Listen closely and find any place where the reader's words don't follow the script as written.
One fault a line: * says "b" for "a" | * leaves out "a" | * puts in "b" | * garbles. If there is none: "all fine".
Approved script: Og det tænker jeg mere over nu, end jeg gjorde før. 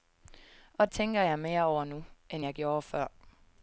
* leaves out "det"